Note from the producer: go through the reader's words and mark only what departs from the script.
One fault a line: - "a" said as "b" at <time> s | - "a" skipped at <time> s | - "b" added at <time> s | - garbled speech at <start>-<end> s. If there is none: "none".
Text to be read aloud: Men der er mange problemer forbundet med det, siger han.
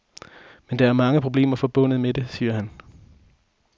none